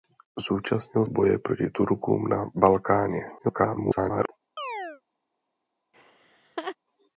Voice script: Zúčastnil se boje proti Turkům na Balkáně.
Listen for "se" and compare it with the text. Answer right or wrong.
wrong